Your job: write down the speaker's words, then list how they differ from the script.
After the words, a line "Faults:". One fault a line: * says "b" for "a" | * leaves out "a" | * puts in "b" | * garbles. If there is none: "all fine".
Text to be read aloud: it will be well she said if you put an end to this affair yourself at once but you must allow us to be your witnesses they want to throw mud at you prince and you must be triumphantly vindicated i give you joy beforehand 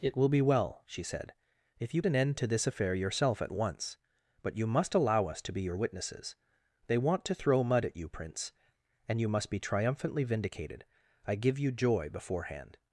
it will be well she said if you an end to this affair yourself at once but you must allow us to be your witnesses they want to throw mud at you prince and you must be triumphantly vindicated i give you joy beforehand
Faults:
* leaves out "put"